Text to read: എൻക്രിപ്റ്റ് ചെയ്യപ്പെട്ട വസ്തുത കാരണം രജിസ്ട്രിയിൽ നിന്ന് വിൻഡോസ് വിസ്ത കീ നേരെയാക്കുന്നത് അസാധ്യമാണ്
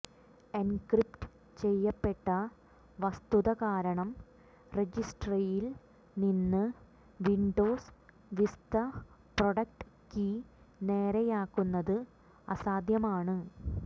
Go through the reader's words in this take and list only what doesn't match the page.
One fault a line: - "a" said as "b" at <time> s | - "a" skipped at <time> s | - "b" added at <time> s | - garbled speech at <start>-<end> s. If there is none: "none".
- "പ്രൊഡക്ട്" added at 9.4 s